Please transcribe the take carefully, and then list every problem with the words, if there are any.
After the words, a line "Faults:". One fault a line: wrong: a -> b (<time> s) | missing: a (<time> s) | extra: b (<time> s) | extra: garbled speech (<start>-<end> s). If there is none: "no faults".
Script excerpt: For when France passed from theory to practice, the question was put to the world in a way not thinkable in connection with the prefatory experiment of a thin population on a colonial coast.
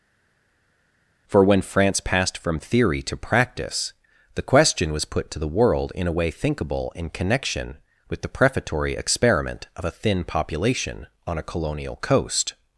For when France passed from theory to practice, the question was put to the world in a way thinkable in connection with the prefatory experiment of a thin population on a colonial coast.
Faults:
missing: not (6.3 s)